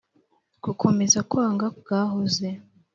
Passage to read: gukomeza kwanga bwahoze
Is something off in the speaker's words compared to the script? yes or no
no